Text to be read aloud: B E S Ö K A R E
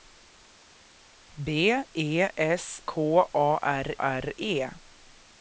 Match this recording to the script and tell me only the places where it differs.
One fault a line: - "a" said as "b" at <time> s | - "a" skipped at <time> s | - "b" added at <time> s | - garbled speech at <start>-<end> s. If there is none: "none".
- "Ö" skipped at 2.8 s
- "R" added at 4.0 s